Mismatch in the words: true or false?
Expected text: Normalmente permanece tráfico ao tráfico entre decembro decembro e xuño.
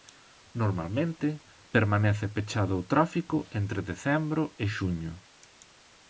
true